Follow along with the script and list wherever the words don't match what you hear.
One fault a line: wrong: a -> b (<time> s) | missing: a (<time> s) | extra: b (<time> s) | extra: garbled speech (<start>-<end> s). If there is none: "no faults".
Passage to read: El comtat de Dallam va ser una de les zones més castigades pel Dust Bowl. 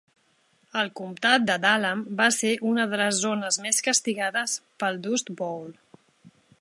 no faults